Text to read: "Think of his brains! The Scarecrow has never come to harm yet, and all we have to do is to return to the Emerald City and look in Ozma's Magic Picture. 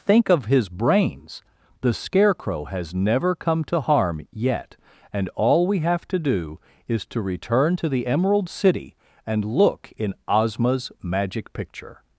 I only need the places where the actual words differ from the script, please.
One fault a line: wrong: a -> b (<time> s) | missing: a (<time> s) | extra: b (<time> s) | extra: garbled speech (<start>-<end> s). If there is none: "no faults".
no faults